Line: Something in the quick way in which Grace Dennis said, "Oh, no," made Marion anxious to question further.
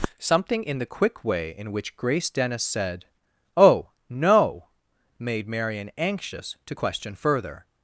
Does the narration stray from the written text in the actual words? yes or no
no